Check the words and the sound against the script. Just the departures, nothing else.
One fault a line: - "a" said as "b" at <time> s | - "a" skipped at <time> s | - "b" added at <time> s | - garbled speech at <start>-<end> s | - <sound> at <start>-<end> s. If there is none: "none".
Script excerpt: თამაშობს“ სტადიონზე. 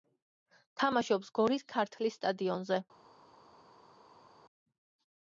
- "გორის ქართლის" added at 1.4 s